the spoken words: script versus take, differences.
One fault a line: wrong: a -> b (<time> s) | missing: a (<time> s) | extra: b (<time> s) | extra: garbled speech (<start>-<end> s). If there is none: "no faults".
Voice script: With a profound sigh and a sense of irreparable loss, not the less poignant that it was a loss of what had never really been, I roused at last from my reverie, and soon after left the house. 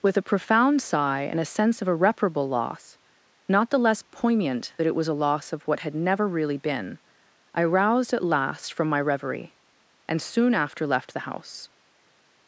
no faults